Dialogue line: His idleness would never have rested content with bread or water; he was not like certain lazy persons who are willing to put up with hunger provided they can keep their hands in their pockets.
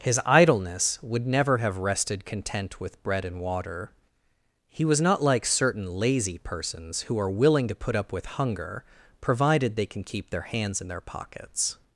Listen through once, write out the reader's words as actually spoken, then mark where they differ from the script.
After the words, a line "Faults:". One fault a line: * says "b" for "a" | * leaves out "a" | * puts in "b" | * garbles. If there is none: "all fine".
His idleness would never have rested content with bread and water; he was not like certain lazy persons who are willing to put up with hunger provided they can keep their hands in their pockets.
Faults:
* says "and" for "or"